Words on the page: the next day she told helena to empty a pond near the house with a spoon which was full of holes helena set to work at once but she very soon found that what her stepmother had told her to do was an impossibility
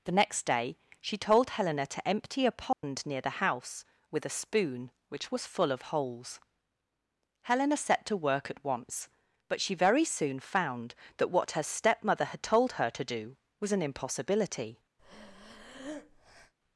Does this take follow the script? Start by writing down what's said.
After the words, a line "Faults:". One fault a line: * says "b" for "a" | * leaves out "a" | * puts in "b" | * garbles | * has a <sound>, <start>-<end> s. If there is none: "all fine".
the next day she told helena to empty a pond near the house with a spoon which was full of holes helena set to work at once but she very soon found that what her stepmother had told her to do was an impossibility
Faults:
* has a dropout, 2.7-2.8 s
* has a breath, 15.0-16.5 s